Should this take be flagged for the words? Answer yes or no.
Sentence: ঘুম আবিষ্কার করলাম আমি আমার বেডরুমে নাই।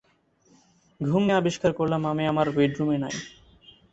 no